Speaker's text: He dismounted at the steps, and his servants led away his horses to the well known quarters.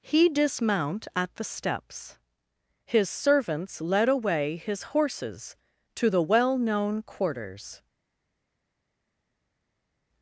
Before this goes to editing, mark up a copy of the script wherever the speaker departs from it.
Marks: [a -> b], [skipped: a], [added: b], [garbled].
He [dismounted -> dismount] at the steps, [skipped: and] his servants led away his horses to the well known quarters.